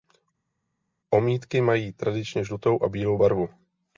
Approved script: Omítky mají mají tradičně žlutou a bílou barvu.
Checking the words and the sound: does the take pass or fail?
fail